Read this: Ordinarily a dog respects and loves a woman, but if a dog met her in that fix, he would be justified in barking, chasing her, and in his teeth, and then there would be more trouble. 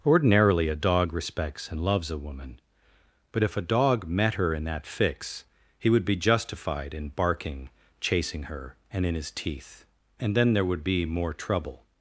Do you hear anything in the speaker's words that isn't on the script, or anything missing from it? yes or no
no